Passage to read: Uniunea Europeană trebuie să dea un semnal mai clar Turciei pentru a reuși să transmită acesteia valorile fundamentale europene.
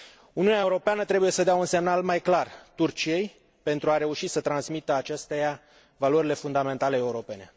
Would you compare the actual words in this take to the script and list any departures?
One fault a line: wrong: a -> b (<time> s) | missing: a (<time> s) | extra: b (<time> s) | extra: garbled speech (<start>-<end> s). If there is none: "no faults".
no faults